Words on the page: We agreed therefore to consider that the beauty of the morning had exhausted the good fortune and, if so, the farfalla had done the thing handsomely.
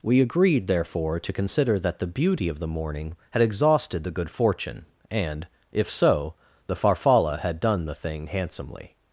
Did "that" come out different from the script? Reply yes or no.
no